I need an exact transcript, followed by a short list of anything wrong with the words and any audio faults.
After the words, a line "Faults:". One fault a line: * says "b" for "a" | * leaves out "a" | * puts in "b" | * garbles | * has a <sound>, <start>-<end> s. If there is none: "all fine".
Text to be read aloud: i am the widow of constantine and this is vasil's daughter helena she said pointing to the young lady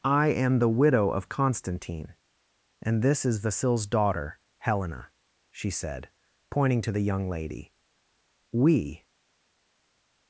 i am the widow of constantine and this is vasil's daughter helena she said pointing to the young lady we
Faults:
* puts in "we"